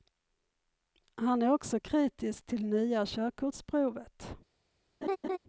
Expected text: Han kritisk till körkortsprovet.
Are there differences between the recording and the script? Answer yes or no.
yes